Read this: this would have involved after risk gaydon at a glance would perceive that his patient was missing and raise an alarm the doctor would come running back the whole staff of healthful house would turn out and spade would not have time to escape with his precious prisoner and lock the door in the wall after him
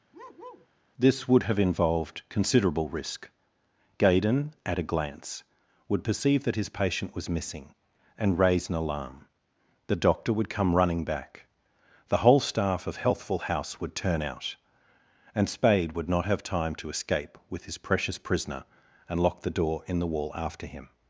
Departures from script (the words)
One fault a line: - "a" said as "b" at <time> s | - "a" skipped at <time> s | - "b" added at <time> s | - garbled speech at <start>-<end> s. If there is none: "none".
- "after" said as "considerable" at 2.3 s